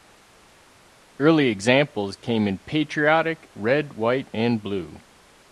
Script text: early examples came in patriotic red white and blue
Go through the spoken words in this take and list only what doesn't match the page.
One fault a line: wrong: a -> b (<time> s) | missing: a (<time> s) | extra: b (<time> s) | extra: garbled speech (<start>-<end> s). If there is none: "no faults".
no faults